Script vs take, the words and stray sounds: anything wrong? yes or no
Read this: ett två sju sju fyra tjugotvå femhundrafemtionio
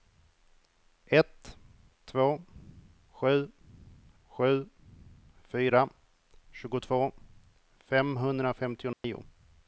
yes